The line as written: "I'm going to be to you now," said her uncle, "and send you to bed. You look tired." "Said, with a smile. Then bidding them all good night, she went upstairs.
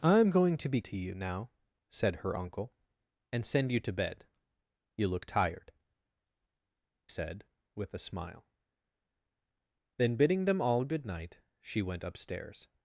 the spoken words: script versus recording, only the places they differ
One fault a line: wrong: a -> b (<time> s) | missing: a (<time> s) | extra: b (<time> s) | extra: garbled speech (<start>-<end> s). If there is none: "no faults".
no faults